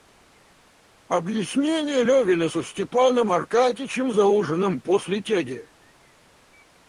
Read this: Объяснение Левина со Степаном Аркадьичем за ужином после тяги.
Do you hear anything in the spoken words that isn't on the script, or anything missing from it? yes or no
no